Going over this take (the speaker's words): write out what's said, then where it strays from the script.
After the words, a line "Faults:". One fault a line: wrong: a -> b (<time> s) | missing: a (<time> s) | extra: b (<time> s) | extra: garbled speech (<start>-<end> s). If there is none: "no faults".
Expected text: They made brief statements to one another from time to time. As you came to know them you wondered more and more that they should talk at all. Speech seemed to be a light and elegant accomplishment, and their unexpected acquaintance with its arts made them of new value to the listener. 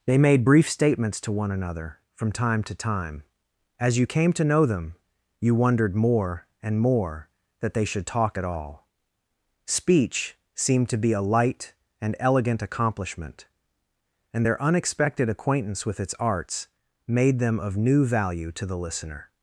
They made brief statements to one another from time to time. As you came to know them you wondered more and more that they should talk at all. Speech seemed to be a light and elegant accomplishment, and their unexpected acquaintance with its arts made them of new value to the listener.
Faults:
no faults